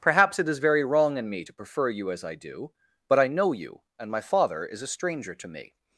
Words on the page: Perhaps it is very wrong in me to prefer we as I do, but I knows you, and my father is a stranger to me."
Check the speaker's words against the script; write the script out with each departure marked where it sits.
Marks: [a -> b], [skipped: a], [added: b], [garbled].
Perhaps it is very wrong in me to prefer [we -> you] as I do, but I [knows -> know] you, and my father is a stranger to me."